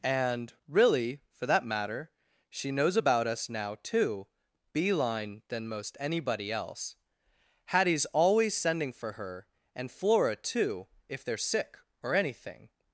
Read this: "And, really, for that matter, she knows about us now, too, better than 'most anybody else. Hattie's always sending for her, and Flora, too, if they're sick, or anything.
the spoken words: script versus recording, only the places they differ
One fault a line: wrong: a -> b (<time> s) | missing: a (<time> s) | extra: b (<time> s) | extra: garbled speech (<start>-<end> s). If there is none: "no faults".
wrong: better -> beeline (4.7 s)